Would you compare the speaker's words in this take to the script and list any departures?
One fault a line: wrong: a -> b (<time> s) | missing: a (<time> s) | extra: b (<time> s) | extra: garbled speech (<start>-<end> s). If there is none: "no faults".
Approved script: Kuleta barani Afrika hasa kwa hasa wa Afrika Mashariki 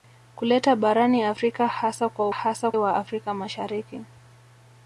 no faults